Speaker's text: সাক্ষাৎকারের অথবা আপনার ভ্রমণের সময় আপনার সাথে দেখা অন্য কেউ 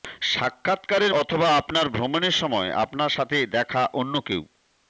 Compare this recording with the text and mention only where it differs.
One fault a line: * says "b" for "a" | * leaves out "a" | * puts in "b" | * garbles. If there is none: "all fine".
all fine